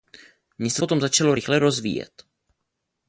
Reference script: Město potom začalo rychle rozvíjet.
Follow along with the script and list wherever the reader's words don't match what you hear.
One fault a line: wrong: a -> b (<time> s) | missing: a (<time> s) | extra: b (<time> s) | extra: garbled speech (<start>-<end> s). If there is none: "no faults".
no faults